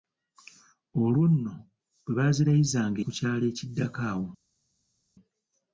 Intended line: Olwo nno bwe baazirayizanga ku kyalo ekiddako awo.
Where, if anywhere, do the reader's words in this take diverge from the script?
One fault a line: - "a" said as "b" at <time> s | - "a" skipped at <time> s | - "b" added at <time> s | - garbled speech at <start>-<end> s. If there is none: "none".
none